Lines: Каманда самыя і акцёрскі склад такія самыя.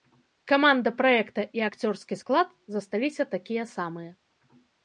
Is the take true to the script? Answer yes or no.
no